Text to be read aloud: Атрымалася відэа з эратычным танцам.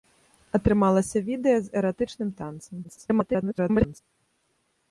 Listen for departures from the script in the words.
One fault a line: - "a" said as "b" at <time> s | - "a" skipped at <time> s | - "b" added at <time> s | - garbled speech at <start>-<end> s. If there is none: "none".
- garbled speech at 2.8-4.0 s